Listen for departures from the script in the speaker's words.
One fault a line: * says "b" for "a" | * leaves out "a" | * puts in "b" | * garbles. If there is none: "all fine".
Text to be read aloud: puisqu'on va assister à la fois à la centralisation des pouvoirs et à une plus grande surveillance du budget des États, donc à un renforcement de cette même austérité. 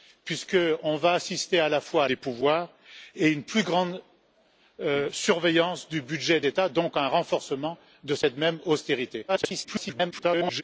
* leaves out "la centralisation"
* leaves out "des"
* garbles